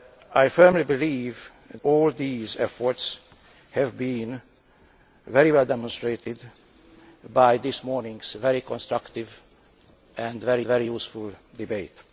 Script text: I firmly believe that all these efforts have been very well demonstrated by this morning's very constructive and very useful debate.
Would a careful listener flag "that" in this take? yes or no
yes